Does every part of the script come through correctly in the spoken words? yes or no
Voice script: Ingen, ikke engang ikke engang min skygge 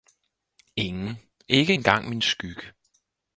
no